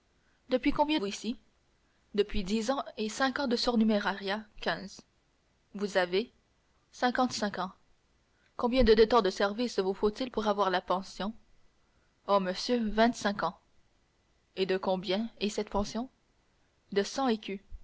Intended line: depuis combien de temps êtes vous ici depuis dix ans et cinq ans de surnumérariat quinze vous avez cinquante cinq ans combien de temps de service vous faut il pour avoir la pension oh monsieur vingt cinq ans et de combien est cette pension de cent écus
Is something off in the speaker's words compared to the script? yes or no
yes